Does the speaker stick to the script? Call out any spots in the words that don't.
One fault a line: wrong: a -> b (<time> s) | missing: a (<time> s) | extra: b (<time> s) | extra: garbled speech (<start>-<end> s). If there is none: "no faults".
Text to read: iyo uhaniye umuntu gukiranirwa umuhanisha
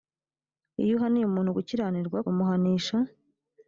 no faults